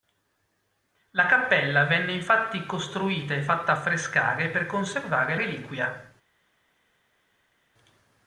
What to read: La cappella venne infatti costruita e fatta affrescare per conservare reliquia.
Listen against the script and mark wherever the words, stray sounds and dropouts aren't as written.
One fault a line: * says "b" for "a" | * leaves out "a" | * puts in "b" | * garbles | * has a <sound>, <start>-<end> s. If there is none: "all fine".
all fine